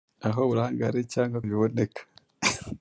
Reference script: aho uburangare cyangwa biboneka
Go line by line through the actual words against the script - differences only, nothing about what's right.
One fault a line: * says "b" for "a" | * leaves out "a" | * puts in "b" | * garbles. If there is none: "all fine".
all fine